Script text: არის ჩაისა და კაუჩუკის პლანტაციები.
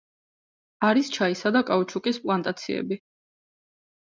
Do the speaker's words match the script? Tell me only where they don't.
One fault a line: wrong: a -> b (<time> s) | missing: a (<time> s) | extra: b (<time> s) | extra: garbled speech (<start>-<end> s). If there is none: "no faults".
no faults